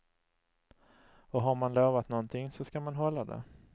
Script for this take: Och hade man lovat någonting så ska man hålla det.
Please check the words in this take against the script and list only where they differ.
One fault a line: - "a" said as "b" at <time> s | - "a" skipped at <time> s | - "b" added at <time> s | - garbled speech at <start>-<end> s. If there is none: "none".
- "hade" said as "har" at 1.4 s